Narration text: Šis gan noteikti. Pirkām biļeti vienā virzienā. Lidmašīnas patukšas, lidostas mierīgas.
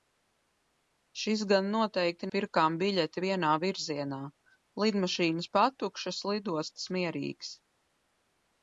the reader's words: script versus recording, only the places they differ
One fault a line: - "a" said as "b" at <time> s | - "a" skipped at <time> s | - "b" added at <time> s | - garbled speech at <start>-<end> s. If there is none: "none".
none